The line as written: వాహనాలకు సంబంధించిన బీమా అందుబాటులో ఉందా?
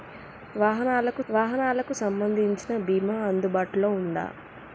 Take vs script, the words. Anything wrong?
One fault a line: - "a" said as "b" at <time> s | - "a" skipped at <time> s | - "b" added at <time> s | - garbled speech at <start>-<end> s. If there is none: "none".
- "వాహనాలకు" added at 1.3 s